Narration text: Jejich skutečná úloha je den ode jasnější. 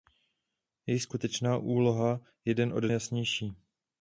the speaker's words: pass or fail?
pass